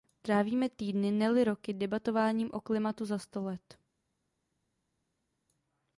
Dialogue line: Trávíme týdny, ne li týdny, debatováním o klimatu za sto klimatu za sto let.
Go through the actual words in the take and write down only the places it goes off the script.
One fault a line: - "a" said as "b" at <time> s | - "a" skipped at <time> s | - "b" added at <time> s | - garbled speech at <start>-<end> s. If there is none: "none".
- "týdny" said as "roky" at 1.4 s
- "klimatu za sto" skipped at 3.4 s